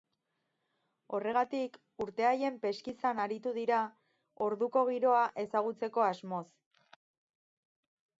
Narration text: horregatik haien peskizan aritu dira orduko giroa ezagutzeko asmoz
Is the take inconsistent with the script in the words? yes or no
yes